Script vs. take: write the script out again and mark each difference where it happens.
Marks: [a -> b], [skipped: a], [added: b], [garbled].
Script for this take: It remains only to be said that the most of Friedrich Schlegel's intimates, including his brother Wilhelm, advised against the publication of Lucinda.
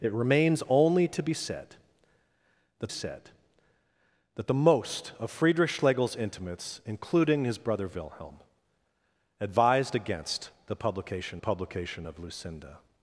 It remains only to be said that [added: said that] the most of Friedrich Schlegel's intimates, including his brother Wilhelm, advised against the publication [added: publication] of Lucinda.